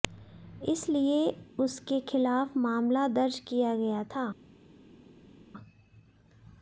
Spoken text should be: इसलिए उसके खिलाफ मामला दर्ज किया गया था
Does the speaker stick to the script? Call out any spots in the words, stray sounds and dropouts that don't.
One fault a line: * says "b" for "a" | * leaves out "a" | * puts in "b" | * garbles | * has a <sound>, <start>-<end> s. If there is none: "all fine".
all fine